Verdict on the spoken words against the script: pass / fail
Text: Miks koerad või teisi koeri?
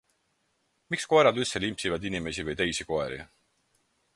fail